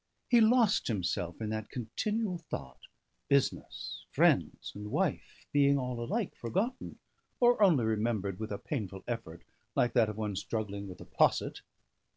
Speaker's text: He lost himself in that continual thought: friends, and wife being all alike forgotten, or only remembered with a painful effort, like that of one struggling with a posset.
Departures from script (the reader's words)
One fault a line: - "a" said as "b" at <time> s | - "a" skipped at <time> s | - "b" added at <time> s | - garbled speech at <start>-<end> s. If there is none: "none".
- "business" added at 3.3 s